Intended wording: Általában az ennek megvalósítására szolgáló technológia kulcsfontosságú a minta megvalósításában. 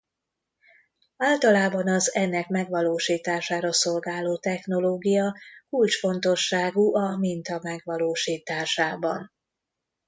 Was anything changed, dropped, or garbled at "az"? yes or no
no